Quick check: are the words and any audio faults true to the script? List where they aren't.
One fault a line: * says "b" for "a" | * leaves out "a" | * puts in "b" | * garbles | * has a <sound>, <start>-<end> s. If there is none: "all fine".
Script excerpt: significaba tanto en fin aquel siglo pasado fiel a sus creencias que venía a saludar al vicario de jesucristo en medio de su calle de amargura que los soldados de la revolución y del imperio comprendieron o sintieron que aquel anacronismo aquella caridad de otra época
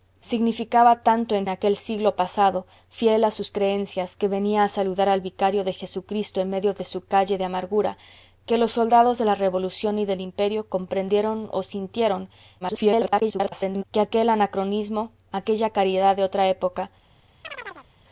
* leaves out "fin"
* garbles
* has a chirp, 17.4-17.9 s